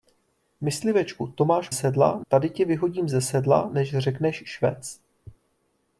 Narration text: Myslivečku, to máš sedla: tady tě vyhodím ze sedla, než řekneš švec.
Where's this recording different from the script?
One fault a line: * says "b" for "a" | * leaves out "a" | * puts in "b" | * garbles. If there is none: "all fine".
all fine